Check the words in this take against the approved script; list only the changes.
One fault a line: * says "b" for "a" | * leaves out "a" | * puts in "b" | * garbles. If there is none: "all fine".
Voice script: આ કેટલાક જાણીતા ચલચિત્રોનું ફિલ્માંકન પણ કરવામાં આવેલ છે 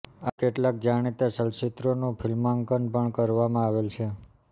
all fine